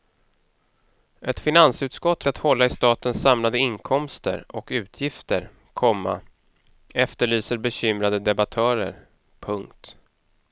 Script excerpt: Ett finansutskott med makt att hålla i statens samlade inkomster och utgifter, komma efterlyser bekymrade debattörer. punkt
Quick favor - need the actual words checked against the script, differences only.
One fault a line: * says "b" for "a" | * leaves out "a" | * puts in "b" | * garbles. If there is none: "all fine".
* leaves out "med makt"